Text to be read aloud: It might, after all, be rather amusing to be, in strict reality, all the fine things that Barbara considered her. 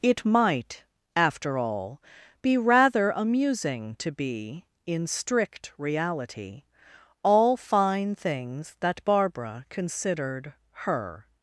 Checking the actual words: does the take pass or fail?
fail